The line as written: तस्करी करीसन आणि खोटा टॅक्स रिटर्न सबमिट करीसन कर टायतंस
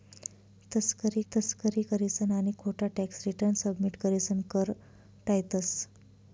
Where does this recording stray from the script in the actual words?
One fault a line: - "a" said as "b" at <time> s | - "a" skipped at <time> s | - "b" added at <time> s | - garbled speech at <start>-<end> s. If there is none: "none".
- "तस्करी" added at 1.3 s